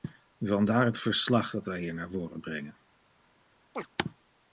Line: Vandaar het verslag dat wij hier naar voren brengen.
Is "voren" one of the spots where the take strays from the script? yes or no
no